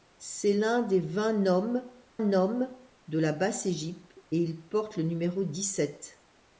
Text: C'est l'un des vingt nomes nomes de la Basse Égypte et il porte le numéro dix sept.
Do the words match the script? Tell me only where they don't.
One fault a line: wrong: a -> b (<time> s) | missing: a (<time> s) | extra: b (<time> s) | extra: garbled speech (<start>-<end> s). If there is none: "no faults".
no faults